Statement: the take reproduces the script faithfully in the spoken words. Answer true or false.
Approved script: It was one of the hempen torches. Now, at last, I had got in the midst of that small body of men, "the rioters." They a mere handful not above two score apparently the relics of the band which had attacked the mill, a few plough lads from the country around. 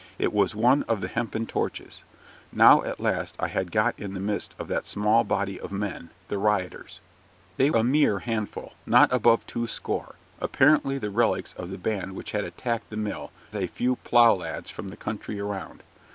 true